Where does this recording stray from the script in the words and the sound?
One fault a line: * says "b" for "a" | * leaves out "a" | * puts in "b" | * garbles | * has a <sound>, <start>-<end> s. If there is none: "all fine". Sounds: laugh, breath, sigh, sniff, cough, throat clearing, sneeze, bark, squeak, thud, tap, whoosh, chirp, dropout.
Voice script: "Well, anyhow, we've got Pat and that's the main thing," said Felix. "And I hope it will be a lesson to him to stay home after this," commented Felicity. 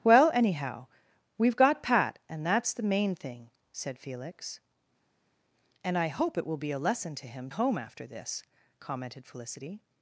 * leaves out "to stay"